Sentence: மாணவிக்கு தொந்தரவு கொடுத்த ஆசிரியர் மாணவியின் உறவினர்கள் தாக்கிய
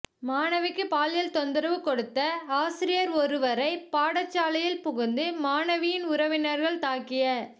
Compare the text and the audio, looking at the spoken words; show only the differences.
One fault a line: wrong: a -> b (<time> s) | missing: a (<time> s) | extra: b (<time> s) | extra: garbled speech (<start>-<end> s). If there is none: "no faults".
extra: பாலியல் (0.9 s)
extra: ஒருவரை பாடசாலையில் புகுந்து (3.1 s)